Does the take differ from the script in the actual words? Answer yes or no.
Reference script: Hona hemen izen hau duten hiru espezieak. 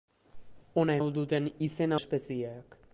yes